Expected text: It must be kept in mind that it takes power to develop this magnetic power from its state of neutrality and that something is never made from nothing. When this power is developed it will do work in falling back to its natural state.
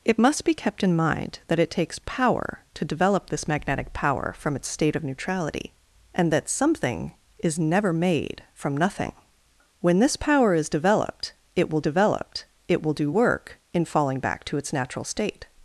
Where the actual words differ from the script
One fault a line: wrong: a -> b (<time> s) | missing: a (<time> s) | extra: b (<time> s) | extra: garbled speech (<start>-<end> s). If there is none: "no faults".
extra: developed it will (11.8 s)